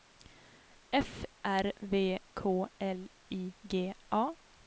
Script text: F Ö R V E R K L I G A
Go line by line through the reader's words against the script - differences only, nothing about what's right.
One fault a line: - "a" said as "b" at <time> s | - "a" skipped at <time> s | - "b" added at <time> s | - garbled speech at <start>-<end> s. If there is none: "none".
- "Ö" skipped at 1.2 s
- "E R" skipped at 2.2 s